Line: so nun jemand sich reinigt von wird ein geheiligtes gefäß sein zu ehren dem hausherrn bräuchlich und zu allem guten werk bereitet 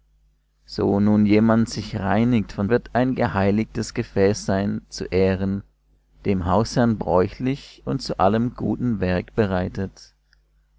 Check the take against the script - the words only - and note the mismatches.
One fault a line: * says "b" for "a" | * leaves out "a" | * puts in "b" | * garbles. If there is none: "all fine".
all fine